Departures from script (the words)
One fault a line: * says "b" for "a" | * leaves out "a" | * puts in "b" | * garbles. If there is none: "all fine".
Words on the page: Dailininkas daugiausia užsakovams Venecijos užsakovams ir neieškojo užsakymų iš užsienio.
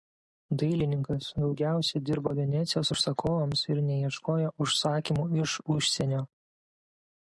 * says "dirbo" for "užsakovams"